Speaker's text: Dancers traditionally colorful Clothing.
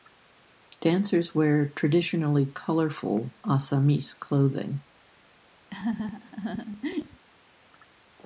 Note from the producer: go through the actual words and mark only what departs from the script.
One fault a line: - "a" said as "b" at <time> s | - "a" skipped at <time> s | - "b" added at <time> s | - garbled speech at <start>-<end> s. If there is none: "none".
- "wear" added at 1.4 s
- "Assamese" added at 3.5 s